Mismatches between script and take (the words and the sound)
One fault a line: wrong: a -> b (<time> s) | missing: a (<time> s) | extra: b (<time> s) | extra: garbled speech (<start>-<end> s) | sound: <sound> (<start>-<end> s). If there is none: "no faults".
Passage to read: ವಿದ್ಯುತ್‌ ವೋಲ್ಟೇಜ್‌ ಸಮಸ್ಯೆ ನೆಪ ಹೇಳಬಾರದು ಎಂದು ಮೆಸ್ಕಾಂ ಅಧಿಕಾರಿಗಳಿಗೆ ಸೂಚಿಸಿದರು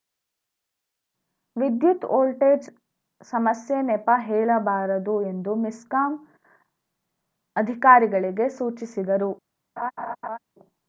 sound: laugh (9.8-10.4 s)